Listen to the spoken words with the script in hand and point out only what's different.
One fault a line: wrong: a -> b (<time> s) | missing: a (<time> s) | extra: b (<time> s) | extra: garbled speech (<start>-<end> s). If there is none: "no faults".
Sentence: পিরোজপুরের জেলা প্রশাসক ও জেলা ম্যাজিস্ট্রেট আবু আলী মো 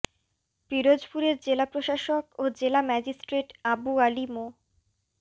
no faults